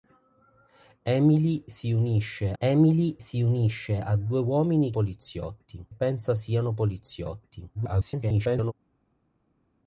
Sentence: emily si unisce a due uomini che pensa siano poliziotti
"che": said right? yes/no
no